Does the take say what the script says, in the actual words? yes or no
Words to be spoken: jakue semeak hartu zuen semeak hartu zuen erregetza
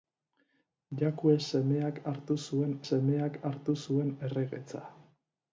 yes